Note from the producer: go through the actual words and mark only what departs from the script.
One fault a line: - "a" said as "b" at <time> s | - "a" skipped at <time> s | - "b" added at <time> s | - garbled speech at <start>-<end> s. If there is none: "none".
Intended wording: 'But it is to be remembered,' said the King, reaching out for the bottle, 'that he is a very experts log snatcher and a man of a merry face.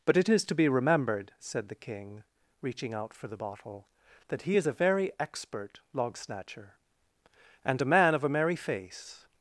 - "experts" said as "expert" at 5.2 s